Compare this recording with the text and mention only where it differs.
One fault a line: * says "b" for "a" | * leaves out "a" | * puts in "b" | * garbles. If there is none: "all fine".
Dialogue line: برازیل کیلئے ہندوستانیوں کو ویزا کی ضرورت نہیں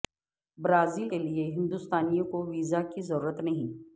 all fine